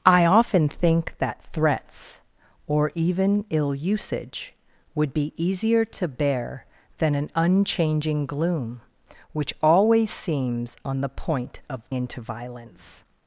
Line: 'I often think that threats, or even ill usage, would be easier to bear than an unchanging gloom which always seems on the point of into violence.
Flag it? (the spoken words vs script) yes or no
no